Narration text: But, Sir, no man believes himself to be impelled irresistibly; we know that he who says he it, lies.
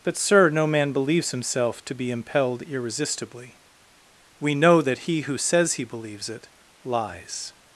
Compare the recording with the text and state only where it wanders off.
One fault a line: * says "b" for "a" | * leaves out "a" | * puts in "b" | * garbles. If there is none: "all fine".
* puts in "believes"